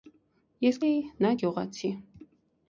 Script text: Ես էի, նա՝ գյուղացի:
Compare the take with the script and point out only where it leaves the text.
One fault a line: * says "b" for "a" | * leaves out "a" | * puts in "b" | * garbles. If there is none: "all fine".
all fine